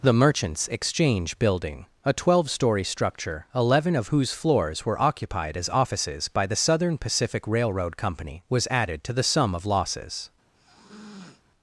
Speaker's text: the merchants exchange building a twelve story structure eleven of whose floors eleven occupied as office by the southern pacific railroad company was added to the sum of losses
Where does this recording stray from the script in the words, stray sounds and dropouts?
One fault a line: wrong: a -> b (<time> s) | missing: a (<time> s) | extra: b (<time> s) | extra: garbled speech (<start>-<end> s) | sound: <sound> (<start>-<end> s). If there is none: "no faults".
wrong: eleven -> were (4.8 s)
wrong: office -> offices (5.7 s)
sound: sniff (10.5-11.4 s)